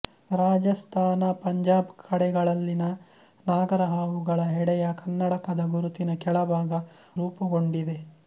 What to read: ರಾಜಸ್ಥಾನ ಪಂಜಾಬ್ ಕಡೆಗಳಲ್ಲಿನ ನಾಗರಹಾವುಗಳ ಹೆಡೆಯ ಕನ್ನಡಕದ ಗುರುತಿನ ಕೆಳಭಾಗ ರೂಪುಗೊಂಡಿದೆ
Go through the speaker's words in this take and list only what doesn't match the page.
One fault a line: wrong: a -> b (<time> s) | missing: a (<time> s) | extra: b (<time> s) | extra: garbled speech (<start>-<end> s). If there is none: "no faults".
no faults